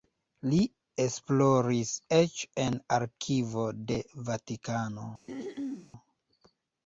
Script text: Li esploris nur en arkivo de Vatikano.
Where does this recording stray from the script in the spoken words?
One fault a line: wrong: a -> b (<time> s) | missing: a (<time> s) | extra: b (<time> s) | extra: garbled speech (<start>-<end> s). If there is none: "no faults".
wrong: nur -> eĉ (2.2 s)